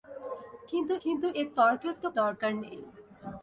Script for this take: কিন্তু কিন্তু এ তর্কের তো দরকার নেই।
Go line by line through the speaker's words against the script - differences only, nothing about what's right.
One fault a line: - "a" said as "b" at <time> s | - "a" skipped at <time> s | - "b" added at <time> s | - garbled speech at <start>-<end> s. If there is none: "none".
none